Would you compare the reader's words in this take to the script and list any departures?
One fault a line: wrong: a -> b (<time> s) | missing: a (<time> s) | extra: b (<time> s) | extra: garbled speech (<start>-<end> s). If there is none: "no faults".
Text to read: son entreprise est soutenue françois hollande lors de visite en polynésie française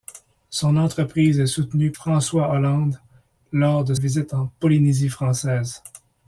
no faults